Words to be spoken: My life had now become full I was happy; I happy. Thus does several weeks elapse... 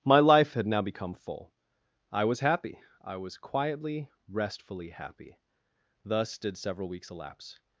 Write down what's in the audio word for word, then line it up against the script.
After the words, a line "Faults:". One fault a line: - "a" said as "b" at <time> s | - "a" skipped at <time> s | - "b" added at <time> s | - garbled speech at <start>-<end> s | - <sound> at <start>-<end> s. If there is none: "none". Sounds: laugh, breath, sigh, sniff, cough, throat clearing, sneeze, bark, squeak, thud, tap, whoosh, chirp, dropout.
My life had now become full I was happy; I was quietly, restfully happy. Thus did several weeks elapse...
Faults:
- "was quietly restfully" added at 3.2 s
- "does" said as "did" at 6.4 s